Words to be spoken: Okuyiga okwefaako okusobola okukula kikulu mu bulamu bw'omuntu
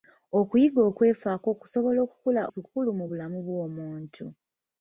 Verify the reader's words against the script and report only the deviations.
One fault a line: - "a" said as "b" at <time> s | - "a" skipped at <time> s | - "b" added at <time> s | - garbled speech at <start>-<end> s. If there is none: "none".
none